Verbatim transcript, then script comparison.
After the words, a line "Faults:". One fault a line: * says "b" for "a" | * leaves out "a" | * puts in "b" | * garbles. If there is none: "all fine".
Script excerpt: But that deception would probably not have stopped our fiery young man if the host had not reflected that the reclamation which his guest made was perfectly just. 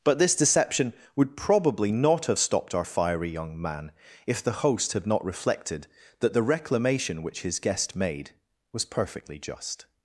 But this deception would probably not have stopped our fiery young man if the host had not reflected that the reclamation which his guest made was perfectly just.
Faults:
* says "this" for "that"